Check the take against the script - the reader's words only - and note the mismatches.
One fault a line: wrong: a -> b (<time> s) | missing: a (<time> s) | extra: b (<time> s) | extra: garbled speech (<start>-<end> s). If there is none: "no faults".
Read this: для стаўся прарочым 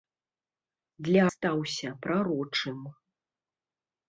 no faults